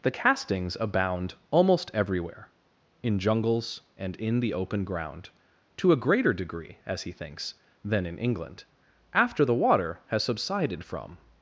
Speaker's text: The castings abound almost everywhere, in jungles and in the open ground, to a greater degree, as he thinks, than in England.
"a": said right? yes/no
yes